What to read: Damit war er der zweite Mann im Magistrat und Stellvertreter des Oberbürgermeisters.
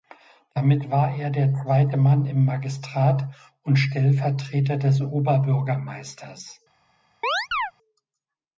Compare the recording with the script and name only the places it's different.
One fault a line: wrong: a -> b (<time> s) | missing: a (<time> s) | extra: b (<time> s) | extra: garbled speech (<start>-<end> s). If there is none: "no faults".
no faults